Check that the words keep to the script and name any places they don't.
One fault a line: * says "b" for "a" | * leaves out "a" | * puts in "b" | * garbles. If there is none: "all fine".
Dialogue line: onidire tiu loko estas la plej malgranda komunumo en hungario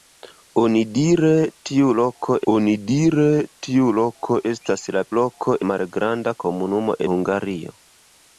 * puts in "onidire tiu loko"
* says "loko" for "plej"
* leaves out "en"